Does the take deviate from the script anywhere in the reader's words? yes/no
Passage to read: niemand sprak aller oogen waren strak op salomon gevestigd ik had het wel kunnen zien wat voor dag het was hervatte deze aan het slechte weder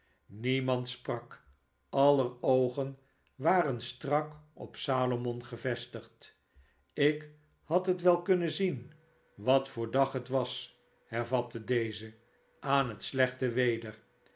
no